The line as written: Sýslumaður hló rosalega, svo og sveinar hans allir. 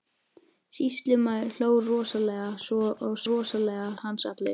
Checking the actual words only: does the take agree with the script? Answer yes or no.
no